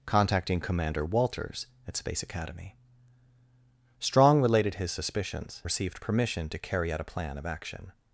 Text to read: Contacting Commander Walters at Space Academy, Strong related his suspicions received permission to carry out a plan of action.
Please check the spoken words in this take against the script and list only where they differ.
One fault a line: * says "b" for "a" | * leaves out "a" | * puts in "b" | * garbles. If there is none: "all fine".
all fine